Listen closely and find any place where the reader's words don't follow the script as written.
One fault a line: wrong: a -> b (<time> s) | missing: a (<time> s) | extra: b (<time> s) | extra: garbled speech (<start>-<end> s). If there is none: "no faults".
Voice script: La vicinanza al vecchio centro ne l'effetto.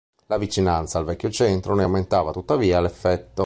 extra: aumentava tuttavia (1.8 s)